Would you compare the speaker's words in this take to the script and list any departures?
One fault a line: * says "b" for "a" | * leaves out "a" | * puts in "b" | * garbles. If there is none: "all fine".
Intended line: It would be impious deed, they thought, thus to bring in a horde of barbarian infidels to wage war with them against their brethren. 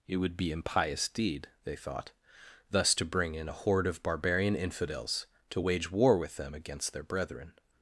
all fine